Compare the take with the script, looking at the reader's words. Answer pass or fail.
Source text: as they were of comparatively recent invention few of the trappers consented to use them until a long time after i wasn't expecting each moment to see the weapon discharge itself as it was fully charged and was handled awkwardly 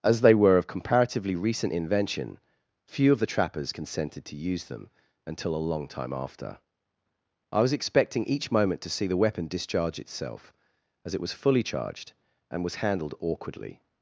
fail